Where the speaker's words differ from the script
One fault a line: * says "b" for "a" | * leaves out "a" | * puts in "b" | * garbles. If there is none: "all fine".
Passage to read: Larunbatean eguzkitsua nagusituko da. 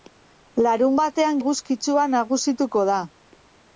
all fine